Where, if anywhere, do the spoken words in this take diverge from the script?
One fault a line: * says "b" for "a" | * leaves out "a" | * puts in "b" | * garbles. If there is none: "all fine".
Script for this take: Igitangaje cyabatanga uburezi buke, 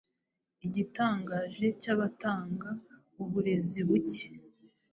all fine